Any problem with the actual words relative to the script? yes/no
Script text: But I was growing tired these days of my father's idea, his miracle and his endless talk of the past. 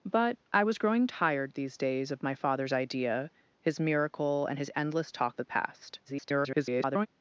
yes